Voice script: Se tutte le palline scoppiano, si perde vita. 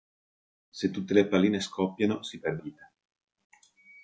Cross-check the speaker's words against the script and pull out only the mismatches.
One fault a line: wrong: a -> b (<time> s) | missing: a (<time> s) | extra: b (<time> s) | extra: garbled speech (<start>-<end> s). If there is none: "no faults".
no faults